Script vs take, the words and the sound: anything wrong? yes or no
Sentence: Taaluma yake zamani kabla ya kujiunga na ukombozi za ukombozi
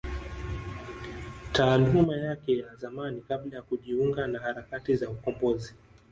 yes